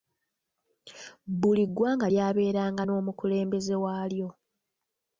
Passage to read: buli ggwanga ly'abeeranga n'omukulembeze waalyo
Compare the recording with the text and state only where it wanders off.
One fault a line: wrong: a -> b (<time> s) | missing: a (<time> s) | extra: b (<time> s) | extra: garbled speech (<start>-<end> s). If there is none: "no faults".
no faults